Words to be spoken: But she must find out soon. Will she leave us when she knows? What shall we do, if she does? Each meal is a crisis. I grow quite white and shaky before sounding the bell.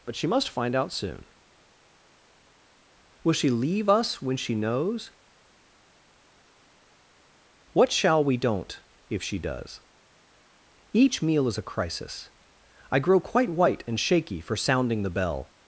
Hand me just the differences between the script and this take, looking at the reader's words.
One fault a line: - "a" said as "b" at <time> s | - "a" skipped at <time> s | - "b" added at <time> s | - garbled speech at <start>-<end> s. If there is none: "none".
- "do" said as "don't" at 8.4 s
- "before" said as "for" at 14.4 s